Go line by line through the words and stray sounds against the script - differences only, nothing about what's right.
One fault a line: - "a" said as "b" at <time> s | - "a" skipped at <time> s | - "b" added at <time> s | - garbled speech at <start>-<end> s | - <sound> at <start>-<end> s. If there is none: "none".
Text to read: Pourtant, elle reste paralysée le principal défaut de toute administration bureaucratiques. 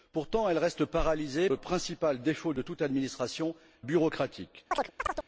- chirp at 4.7-5.3 s